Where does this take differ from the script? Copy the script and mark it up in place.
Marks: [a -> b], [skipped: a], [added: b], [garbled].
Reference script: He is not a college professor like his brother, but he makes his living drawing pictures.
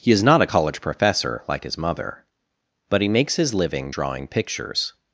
He is not a college professor like his [brother, -> mother] but he makes his living drawing pictures.